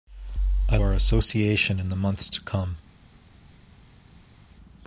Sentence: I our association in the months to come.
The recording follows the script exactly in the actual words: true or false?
true